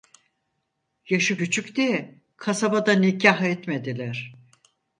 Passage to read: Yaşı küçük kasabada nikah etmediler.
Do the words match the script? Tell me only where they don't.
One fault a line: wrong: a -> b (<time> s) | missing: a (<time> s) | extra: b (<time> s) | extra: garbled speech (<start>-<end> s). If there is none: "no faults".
extra: diye (1.8 s)